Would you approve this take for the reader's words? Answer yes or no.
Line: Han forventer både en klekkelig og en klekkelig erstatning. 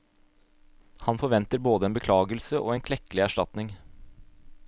no